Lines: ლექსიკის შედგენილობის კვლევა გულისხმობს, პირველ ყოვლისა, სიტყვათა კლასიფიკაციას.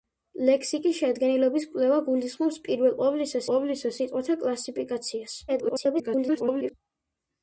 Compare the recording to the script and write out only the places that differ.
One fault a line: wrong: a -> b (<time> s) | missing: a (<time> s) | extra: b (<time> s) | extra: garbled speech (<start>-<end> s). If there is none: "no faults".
extra: ყოვლისა (3.5 s)
extra: garbled speech (5.5-6.7 s)